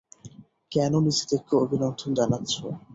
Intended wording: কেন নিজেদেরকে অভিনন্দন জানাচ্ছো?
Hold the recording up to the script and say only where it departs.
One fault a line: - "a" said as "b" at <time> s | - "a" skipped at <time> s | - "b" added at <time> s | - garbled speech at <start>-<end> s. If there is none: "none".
none